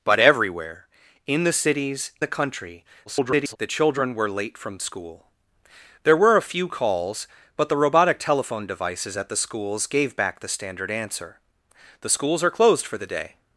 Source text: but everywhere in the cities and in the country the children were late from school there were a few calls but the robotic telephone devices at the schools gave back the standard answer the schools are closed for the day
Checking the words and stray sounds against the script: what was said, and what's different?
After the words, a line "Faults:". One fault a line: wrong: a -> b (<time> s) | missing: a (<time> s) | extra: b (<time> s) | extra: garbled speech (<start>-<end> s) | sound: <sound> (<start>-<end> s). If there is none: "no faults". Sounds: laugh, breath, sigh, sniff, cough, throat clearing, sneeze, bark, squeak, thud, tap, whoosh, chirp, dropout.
but everywhere in the cities the country [garbled] the children were late from school there were a few calls but the robotic telephone devices at the schools gave back the standard answer the schools are closed for the day
Faults:
missing: and in (2.1 s)
extra: garbled speech (3.1-3.6 s)